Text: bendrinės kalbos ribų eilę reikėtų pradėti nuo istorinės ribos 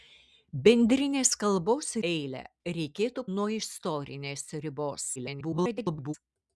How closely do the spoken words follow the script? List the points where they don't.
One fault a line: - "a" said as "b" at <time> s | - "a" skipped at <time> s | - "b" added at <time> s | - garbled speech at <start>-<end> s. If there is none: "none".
- "ribų" skipped at 1.9 s
- "pradėti" skipped at 3.2 s
- garbled speech at 5.1-6.1 s